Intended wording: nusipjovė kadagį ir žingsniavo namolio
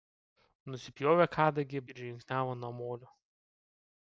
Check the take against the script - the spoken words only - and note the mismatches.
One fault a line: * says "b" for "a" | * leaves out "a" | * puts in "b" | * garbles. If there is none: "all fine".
all fine